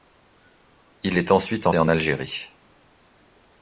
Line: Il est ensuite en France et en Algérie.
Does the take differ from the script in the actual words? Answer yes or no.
yes